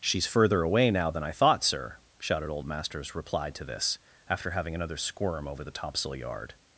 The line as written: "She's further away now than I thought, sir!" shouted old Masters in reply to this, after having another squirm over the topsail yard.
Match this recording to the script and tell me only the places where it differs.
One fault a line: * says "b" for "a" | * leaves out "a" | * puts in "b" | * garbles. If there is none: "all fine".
* leaves out "in"